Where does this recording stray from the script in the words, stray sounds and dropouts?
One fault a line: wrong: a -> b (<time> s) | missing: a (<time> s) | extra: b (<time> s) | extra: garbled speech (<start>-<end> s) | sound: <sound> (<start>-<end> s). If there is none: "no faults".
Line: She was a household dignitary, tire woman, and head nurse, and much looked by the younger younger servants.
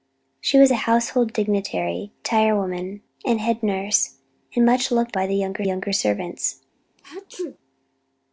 sound: sneeze (7.0-7.6 s)